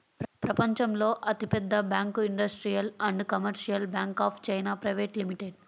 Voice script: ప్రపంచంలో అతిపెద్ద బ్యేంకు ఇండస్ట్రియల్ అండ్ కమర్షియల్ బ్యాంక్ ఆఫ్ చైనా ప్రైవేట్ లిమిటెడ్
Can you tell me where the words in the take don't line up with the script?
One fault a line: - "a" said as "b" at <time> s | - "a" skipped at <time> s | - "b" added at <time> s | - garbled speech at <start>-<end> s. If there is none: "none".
none